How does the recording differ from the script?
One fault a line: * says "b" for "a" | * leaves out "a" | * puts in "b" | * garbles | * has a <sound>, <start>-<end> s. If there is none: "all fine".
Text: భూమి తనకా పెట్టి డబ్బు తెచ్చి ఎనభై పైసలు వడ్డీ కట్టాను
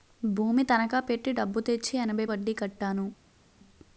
* leaves out "పైసలు"